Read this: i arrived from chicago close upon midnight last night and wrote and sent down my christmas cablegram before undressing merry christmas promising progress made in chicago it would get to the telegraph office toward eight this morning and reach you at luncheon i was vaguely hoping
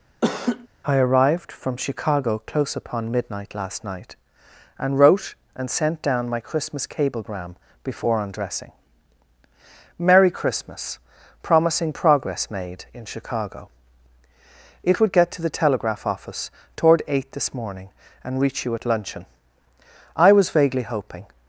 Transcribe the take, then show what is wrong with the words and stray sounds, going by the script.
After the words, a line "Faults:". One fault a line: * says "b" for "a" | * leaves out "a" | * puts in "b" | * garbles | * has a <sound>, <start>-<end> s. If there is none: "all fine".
i arrived from chicago close upon midnight last night and wrote and sent down my christmas cablegram before undressing merry christmas promising progress made in chicago it would get to the telegraph office toward eight this morning and reach you at luncheon i was vaguely hoping
Faults:
* has a laugh, 0.2-0.7 s